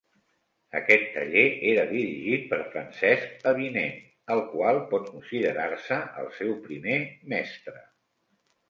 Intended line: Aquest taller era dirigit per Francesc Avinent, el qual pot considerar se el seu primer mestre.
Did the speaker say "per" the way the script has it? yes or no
yes